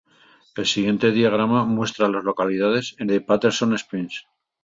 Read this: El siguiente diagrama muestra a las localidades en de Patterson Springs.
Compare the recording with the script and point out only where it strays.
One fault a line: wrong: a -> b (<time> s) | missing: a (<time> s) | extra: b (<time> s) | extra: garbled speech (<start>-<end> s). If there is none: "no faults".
no faults